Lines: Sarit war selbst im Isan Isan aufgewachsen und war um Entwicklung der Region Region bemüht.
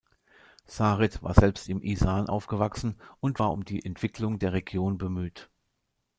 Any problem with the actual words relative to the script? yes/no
yes